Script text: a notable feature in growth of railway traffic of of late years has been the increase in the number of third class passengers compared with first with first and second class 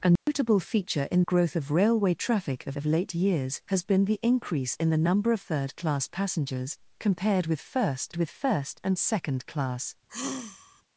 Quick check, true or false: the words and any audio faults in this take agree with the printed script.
false